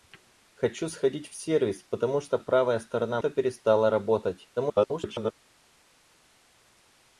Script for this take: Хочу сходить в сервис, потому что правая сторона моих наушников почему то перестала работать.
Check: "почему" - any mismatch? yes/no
yes